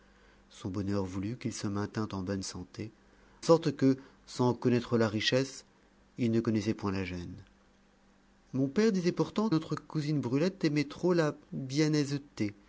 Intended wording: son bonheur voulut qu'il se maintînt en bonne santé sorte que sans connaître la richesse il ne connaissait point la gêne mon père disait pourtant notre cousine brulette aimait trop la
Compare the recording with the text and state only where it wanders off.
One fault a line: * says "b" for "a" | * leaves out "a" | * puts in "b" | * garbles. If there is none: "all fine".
all fine